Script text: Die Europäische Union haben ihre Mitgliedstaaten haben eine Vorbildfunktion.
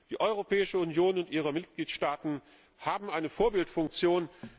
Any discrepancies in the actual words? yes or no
yes